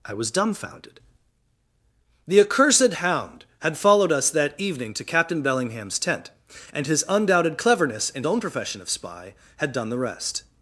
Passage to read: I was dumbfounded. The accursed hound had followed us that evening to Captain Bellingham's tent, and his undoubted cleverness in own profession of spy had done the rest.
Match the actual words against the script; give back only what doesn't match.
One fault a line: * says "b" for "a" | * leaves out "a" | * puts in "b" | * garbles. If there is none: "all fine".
all fine